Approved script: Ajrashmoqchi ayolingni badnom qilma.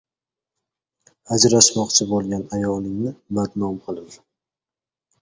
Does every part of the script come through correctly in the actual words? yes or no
no